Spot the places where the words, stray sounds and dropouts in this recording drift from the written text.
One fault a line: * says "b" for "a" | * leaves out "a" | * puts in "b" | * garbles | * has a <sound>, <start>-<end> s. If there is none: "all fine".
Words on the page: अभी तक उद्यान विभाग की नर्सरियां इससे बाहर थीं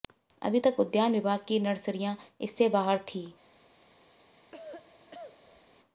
* has a cough, 4.5-5.7 s